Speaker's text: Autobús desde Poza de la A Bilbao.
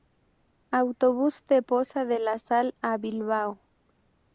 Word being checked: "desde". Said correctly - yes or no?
no